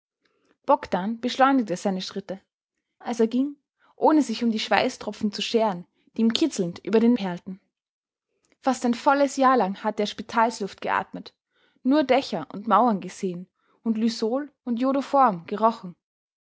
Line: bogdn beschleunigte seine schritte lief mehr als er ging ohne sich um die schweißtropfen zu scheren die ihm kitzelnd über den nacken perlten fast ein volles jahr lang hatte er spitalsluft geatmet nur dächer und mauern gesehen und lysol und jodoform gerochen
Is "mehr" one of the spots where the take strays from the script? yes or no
yes